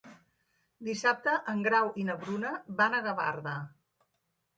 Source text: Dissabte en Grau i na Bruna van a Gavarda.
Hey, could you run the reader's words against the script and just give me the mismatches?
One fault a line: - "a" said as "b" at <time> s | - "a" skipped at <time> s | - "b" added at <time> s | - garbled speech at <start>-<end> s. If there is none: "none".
none